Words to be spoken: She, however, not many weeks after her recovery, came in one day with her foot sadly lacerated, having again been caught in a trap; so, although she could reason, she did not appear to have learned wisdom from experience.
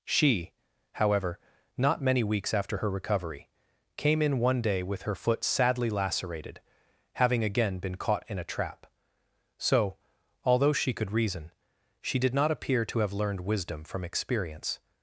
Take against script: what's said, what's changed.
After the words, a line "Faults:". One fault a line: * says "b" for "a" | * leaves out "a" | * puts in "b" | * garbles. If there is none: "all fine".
She, however, not many weeks after her recovery, came in one day with her foot sadly lacerated, having again been caught in a trap; so, although she could reason, she did not appear to have learned wisdom from experience.
Faults:
all fine